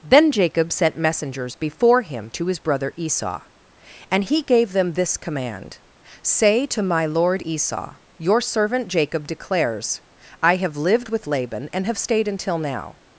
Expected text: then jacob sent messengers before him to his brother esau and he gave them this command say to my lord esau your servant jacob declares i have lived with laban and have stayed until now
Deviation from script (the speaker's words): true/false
false